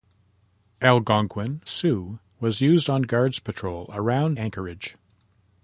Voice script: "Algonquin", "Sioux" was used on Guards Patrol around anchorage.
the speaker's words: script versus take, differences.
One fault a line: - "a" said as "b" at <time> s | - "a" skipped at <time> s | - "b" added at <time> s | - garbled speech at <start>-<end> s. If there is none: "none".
none